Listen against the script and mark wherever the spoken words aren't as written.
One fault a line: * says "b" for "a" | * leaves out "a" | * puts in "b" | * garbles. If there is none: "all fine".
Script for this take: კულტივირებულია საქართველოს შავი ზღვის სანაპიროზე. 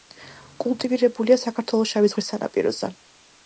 all fine